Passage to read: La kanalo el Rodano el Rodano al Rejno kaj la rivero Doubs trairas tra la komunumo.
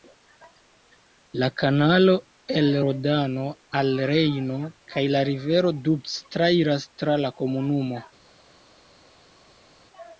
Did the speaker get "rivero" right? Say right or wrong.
right